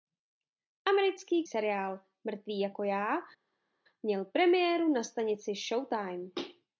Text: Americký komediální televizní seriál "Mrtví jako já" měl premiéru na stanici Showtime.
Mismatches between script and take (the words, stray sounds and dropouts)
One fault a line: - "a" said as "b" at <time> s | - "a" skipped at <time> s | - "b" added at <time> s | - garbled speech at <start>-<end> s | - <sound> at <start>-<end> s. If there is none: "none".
- "komediální televizní" skipped at 1.4 s